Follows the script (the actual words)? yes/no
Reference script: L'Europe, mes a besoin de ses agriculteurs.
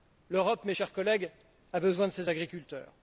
no